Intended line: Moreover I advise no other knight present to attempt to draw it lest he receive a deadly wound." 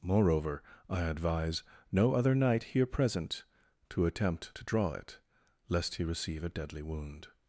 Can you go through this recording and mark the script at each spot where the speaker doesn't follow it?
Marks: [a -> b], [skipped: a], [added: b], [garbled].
Moreover I advise no other knight [added: here] present to attempt to draw it lest he receive a deadly wound."